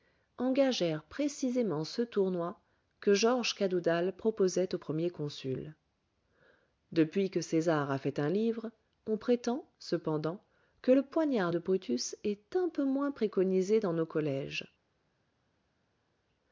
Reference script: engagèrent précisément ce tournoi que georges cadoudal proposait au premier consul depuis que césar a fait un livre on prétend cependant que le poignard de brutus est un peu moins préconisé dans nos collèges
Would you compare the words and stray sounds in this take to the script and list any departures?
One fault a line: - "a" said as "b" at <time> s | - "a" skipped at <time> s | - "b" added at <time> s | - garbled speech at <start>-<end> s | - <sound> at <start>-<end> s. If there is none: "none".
none